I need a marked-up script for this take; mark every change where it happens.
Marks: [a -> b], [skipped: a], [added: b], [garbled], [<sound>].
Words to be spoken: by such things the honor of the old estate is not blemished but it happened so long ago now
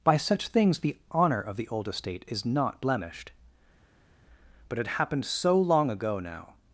by such things the honor of the old estate is not blemished but it happened so long ago now